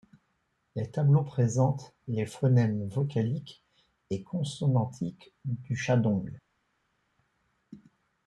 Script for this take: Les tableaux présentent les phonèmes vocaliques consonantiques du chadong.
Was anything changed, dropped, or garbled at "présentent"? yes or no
no